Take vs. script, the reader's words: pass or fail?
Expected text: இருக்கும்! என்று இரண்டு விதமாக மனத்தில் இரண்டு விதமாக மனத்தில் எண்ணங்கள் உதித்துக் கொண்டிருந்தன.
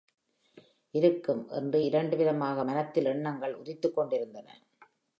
fail